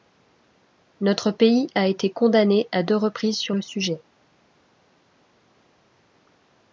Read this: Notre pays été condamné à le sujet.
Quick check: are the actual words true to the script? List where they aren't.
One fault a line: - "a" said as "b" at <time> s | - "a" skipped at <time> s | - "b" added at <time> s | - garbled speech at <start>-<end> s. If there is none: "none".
- "a" added at 1.8 s
- "deux reprises sur" added at 2.8 s